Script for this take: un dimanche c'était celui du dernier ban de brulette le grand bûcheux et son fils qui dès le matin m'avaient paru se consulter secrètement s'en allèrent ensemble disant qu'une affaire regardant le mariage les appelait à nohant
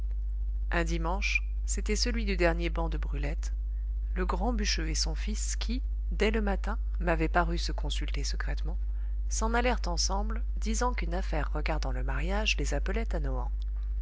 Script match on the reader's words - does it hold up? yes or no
yes